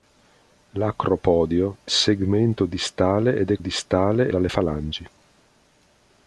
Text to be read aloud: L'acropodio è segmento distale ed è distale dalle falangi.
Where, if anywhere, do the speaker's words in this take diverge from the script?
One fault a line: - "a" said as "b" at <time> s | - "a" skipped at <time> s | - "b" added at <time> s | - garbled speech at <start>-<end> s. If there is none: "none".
none